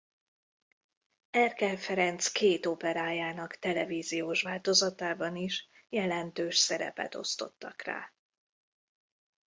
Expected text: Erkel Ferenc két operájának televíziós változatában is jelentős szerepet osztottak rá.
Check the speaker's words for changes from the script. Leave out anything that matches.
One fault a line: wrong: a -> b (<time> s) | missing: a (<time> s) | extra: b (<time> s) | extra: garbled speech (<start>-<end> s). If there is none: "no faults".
no faults